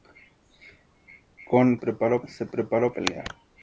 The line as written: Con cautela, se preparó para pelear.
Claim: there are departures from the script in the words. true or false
true